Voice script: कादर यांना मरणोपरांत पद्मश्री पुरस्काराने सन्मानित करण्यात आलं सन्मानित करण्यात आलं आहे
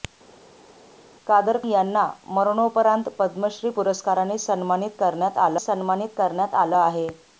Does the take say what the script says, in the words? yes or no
yes